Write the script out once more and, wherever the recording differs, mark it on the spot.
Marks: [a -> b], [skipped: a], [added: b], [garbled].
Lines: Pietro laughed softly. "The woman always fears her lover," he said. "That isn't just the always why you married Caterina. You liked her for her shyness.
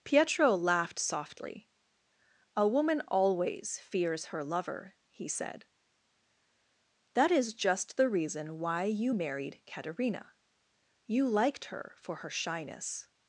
Pietro laughed softly. ["The -> A] woman always fears her lover," he said. "That [isn't -> is] just the [always -> reason] why you married Caterina. You liked her for her shyness.